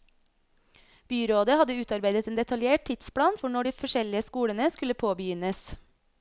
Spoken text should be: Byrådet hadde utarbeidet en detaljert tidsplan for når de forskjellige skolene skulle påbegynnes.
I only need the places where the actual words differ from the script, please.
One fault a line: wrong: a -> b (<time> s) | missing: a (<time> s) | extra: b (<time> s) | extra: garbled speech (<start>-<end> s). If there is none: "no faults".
no faults